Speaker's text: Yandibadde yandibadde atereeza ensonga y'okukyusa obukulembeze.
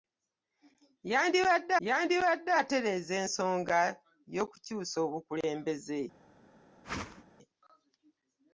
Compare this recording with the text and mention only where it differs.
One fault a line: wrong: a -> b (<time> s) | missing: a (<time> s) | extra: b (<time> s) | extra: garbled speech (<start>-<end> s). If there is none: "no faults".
no faults